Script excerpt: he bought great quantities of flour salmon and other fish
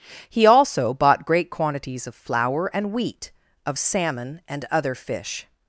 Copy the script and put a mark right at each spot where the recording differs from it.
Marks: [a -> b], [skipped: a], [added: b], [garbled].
he [added: also] bought great quantities of flour [added: and wheat of] salmon and other fish